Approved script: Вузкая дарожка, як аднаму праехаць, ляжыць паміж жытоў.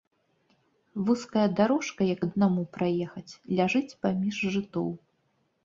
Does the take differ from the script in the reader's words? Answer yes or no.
no